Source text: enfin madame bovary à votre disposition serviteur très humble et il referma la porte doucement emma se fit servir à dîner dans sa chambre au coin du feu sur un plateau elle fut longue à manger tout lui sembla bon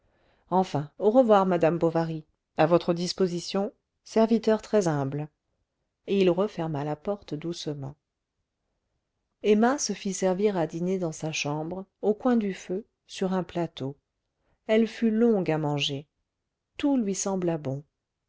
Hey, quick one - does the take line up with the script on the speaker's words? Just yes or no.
no